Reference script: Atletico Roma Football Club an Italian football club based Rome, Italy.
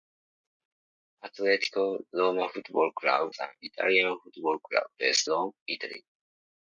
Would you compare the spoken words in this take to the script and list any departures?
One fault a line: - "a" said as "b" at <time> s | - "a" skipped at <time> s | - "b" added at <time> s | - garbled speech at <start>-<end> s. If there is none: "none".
none